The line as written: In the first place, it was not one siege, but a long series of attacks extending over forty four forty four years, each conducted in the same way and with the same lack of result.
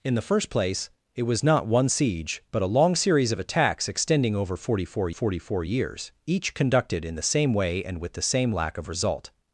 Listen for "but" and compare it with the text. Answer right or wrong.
right